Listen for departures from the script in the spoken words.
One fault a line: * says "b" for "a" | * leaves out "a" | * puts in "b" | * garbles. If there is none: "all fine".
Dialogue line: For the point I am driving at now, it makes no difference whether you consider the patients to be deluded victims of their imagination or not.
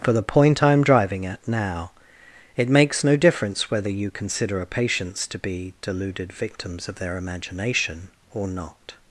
* says "a" for "the"